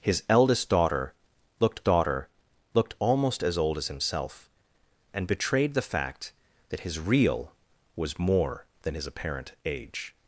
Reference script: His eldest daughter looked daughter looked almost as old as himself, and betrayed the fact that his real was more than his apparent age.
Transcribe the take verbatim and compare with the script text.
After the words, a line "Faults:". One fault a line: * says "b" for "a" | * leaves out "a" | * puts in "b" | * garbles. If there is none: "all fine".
His eldest daughter looked daughter looked almost as old as himself, and betrayed the fact that his real was more than his apparent age.
Faults:
all fine